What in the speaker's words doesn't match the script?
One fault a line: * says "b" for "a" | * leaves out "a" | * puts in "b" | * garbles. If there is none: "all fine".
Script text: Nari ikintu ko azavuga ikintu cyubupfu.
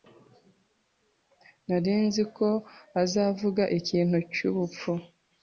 * says "nzi" for "ikintu"